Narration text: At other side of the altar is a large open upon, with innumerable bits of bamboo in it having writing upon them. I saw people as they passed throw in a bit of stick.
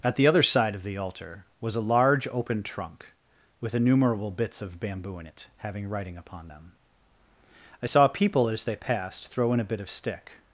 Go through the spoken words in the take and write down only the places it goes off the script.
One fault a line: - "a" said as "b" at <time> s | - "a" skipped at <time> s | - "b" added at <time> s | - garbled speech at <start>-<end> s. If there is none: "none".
- "the" added at 0.1 s
- "is" said as "was" at 1.6 s
- "upon" said as "trunk" at 2.6 s